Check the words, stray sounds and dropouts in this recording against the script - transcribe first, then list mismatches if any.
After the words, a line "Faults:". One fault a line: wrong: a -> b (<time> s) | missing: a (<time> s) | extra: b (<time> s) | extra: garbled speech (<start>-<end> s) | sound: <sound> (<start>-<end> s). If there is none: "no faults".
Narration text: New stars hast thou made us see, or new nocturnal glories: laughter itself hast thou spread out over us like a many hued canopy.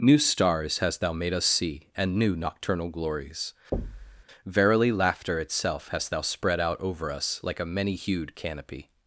New stars hast thou made us see, and new nocturnal glories: verily, laughter itself hast thou spread out over us like a many hued canopy.
Faults:
wrong: or -> and (1.9 s)
sound: thud (3.7-4.2 s)
extra: verily (4.5 s)